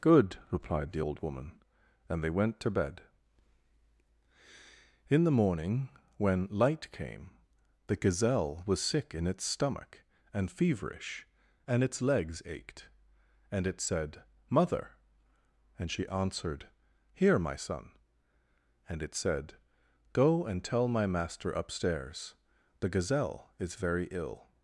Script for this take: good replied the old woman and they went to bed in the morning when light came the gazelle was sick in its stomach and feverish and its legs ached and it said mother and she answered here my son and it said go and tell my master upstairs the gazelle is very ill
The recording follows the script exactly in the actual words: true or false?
true